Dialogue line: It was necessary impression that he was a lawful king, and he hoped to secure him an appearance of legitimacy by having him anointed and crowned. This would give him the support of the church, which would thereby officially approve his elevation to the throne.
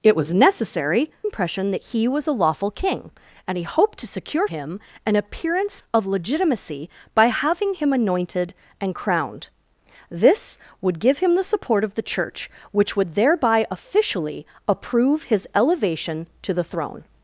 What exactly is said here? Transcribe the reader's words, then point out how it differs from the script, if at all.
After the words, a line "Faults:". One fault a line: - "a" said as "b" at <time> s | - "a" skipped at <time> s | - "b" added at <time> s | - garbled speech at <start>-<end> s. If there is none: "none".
It was necessary impression that he was a lawful king, and he hoped to secure him an appearance of legitimacy by having him anointed and crowned. This would give him the support of the church, which would thereby officially approve his elevation to the throne.
Faults:
none